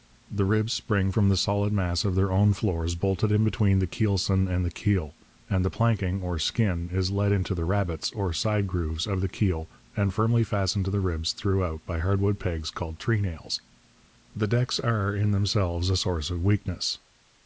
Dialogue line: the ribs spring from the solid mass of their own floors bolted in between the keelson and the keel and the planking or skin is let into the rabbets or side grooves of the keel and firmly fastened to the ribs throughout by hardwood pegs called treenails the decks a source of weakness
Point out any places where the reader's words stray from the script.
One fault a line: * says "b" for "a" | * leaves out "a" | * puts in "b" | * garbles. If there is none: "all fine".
* puts in "are in themselves"